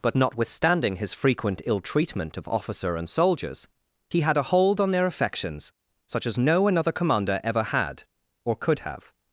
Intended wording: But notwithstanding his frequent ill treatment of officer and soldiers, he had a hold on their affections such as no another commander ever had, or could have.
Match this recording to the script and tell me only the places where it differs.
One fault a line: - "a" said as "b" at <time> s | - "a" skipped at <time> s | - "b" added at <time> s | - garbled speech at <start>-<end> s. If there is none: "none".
none